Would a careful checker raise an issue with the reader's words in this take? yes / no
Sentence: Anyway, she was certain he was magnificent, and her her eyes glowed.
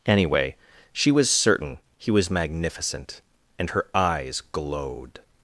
yes